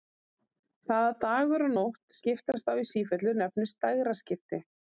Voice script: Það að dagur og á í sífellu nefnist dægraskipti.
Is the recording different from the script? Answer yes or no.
yes